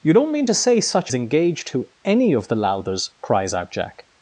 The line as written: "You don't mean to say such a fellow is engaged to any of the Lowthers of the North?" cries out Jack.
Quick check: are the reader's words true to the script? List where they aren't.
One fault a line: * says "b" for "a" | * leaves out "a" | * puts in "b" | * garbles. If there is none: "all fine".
* leaves out "a fellow is"
* leaves out "of the North"